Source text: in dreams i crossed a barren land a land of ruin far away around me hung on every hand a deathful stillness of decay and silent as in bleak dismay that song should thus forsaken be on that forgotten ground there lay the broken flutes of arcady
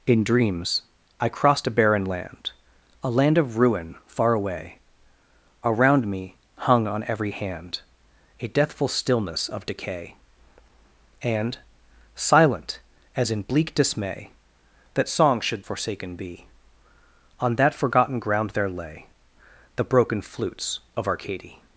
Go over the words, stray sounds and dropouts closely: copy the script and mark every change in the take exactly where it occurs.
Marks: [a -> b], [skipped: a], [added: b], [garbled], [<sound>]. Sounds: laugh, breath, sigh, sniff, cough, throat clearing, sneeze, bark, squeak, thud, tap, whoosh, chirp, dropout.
in dreams i crossed a barren land a land of ruin far away around me hung on every hand a deathful stillness of decay and silent as in bleak dismay that song should [skipped: thus] forsaken be on that forgotten ground there lay the broken flutes of arcady